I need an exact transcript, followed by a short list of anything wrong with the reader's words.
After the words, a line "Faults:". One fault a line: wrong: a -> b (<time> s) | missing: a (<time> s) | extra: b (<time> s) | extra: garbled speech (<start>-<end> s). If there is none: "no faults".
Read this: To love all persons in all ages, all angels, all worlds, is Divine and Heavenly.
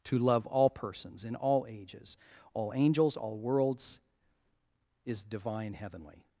To love all persons in all ages, all angels, all worlds, is Divine Heavenly.
Faults:
missing: and (5.7 s)